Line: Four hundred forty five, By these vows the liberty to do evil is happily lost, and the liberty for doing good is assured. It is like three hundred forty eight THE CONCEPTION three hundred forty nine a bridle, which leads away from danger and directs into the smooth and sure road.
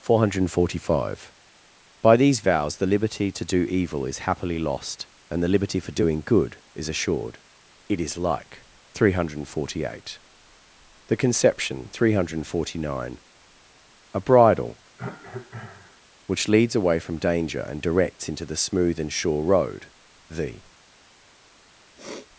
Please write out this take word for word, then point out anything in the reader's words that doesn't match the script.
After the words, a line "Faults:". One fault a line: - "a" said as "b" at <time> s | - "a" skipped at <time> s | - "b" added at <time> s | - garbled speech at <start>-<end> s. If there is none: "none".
Four hundred forty five, By these vows the liberty to do evil is happily lost, and the liberty for doing good is assured. It is like three hundred forty eight THE CONCEPTION three hundred forty nine a bridle, which leads away from danger and directs into the smooth and sure road. The.
Faults:
- "The" added at 20.3 s